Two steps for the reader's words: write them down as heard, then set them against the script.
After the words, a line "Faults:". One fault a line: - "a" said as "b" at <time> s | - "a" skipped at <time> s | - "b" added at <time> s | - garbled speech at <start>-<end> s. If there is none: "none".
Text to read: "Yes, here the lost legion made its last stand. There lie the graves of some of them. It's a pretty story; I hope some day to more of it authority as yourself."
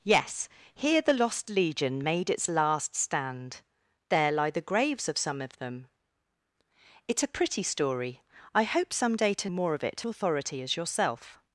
"Yes, here the lost legion made its last stand. There lie the graves of some of them. It's a pretty story; I hope some day to more of it authority as yourself."
Faults:
none